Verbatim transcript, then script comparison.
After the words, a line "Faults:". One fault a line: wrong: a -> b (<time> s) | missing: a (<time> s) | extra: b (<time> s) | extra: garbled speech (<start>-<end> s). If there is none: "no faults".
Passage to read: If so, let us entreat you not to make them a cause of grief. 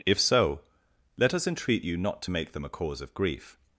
If so, let us entreat you not to make them a cause of grief.
Faults:
no faults